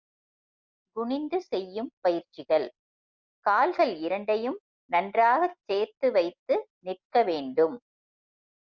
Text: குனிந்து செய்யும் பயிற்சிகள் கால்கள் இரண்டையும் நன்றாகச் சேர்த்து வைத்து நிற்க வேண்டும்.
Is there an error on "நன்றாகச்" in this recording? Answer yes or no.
no